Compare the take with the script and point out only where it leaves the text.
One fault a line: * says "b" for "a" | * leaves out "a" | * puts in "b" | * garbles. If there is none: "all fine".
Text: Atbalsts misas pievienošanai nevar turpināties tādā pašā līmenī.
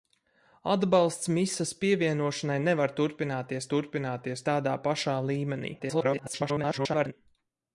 * puts in "turpināties"
* garbles